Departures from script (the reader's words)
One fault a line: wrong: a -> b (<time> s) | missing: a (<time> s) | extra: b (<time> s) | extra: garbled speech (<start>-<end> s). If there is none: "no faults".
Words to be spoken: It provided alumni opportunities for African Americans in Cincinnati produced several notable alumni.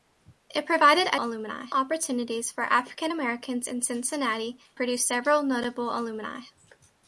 no faults